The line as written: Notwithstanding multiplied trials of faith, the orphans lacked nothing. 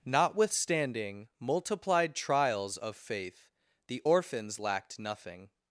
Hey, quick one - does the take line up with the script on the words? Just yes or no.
yes